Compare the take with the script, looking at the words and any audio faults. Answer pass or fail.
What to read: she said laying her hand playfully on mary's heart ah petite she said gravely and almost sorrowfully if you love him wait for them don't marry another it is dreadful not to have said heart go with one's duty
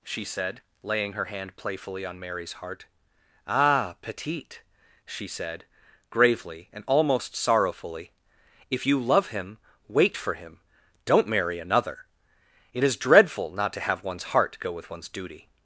fail